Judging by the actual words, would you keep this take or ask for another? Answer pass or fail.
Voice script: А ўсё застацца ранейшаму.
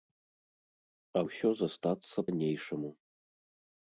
pass